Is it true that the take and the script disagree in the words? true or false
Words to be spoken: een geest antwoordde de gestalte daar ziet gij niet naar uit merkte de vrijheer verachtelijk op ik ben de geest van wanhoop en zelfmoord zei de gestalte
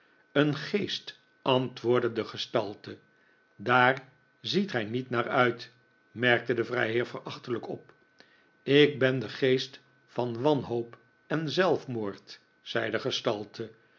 false